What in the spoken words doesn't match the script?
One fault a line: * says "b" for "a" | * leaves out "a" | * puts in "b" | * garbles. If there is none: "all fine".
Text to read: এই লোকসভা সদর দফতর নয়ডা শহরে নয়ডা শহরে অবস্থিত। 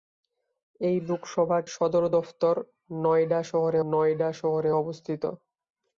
all fine